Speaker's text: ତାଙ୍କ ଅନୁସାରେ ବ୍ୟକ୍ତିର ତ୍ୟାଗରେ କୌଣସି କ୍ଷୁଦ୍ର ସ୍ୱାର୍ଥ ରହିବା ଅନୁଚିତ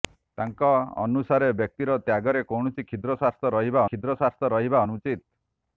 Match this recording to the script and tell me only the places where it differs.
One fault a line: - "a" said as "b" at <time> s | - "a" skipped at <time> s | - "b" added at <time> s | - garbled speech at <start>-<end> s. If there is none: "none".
- "କ୍ଷୁଦ୍ର ସ୍ୱାର୍ଥ ରହିବା" added at 3.9 s